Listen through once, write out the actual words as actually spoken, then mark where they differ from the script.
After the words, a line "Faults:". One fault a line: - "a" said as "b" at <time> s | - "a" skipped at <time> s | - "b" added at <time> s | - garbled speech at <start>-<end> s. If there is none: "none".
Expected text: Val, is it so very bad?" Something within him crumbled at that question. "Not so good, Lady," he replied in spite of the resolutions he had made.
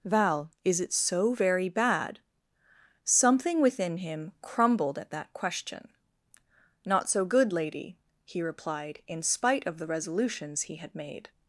Val, is it so very bad?" Something within him crumbled at that question. "Not so good, Lady," he replied in spite of the resolutions he had made.
Faults:
none